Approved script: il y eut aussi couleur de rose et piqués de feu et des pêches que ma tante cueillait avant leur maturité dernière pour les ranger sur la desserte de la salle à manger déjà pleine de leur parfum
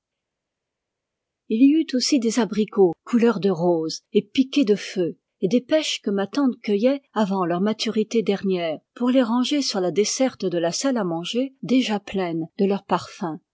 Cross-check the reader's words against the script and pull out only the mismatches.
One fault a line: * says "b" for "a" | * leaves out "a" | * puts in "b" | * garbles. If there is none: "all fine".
* puts in "des abricots"